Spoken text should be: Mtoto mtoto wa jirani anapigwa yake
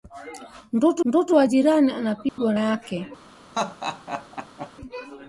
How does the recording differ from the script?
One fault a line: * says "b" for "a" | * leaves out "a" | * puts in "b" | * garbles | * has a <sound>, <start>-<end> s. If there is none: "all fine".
* has a dropout, 2.3-2.4 s
* has a laugh, 3.5-4.7 s